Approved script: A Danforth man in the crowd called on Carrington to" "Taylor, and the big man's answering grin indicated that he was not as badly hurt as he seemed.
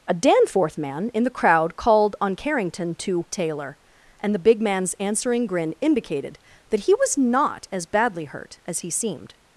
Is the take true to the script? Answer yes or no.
yes